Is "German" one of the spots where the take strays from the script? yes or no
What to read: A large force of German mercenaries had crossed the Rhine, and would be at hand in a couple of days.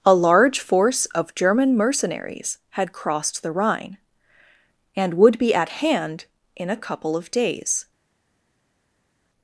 no